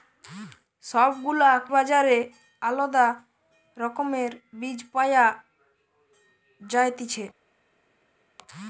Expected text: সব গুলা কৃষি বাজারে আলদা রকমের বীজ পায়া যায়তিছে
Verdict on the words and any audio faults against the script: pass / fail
fail